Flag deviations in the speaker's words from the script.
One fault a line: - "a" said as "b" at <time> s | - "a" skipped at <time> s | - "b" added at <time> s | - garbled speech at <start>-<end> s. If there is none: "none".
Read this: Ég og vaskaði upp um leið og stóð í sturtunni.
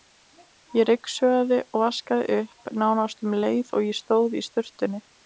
- "ryksugaði" added at 0.9 s
- "nánast" added at 2.9 s
- "ég" added at 3.9 s